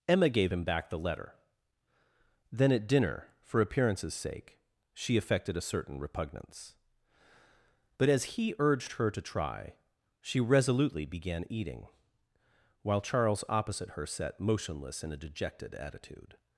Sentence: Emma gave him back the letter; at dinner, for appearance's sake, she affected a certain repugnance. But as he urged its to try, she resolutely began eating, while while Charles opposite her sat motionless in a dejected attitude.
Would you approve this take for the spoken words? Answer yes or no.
no